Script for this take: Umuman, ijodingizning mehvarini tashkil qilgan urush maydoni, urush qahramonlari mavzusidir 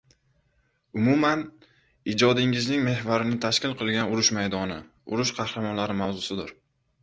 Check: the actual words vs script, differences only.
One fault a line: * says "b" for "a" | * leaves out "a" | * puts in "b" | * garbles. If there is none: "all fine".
all fine